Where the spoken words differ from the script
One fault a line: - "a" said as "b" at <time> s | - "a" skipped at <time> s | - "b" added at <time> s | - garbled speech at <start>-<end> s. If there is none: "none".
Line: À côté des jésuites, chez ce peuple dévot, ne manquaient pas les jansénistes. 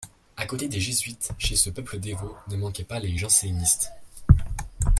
none